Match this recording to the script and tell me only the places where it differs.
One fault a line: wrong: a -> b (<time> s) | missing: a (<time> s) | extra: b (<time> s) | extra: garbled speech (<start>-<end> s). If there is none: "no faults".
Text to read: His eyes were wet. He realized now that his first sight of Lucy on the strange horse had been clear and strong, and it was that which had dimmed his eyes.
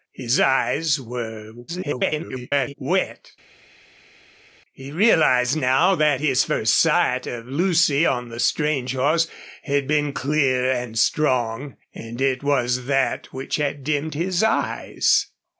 extra: garbled speech (1.7-2.7 s)